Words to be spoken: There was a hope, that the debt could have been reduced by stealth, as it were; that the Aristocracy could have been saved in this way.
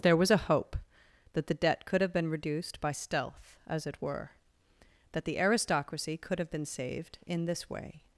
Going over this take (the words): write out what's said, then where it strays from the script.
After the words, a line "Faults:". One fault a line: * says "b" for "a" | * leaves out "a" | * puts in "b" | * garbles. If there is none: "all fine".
There was a hope, that the debt could have been reduced by stealth, as it were; that the Aristocracy could have been saved in this way.
Faults:
all fine